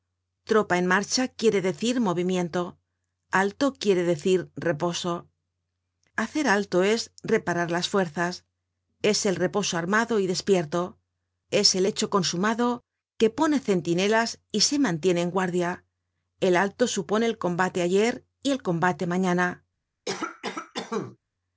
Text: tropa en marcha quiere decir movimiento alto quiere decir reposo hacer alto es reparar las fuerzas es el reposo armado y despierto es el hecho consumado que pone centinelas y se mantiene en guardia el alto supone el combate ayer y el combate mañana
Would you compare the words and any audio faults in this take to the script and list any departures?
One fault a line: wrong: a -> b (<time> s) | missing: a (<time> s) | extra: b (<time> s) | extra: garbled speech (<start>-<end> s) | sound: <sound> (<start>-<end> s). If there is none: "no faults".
sound: cough (20.1-21.2 s)